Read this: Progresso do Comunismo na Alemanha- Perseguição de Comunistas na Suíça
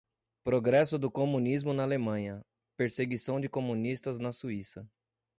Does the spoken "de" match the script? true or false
true